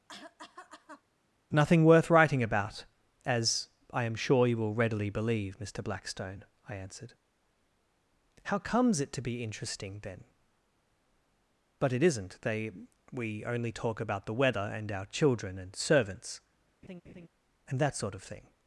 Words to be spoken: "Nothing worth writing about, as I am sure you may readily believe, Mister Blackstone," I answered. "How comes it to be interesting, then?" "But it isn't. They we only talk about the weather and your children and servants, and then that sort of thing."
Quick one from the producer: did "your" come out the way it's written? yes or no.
no